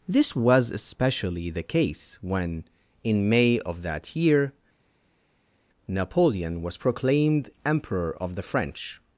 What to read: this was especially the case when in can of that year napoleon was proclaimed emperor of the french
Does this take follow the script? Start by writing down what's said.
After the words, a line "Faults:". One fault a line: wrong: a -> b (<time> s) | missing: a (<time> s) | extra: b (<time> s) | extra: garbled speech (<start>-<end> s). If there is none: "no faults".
this was especially the case when in may of that year napoleon was proclaimed emperor of the french
Faults:
wrong: can -> may (3.3 s)